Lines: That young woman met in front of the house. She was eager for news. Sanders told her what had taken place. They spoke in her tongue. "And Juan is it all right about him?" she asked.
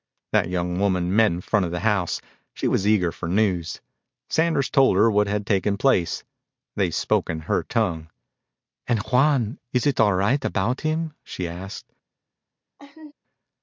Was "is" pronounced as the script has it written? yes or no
yes